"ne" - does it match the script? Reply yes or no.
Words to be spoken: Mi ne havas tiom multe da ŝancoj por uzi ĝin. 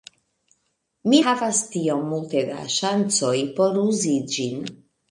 no